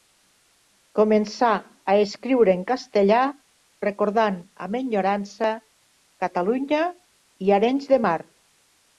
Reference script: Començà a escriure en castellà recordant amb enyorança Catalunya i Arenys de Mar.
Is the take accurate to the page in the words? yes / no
yes